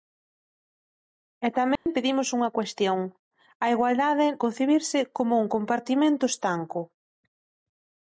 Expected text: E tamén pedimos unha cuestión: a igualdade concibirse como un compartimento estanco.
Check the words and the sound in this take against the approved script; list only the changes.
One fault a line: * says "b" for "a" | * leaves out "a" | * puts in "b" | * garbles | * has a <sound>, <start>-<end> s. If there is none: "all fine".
* has a dropout, 1.8-1.9 s